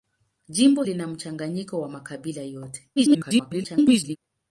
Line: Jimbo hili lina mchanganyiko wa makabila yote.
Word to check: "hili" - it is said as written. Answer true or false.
false